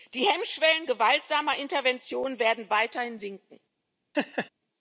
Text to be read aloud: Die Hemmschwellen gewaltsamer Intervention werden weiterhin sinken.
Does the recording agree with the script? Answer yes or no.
yes